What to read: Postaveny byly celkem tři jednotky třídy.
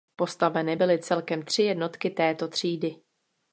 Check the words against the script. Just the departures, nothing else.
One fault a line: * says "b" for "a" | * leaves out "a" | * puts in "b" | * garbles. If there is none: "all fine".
* puts in "této"